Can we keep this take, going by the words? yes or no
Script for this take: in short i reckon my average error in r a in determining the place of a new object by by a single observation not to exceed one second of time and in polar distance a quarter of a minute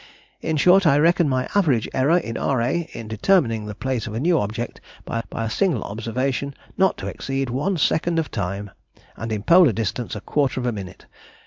yes